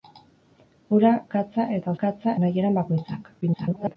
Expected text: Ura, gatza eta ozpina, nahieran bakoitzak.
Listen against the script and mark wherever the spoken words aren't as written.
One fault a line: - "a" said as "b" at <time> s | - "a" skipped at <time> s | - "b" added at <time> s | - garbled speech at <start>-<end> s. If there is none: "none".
- "ozpina" said as "gatza" at 2.0 s
- garbled speech at 3.4-4.0 s